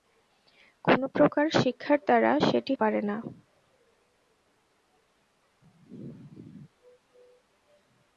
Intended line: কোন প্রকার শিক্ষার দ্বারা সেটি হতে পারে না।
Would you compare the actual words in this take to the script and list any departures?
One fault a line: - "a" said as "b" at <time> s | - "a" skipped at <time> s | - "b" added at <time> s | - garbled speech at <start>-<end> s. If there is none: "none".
- "হতে" skipped at 2.7 s